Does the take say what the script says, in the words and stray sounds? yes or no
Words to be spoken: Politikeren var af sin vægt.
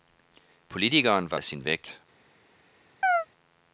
no